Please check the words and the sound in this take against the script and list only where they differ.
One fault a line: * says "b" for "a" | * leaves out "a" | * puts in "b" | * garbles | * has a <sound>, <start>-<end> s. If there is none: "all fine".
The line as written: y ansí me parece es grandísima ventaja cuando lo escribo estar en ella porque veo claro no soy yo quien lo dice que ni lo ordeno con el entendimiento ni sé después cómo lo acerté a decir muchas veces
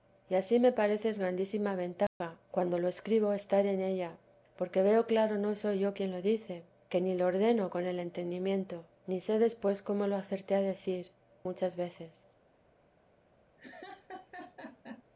* has a dropout, 2.1-2.2 s
* has a laugh, 13.6-15.0 s